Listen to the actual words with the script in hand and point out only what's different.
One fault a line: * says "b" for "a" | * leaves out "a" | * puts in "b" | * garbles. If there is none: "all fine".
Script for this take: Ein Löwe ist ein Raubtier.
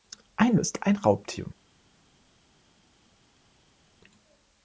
* leaves out "Löwe"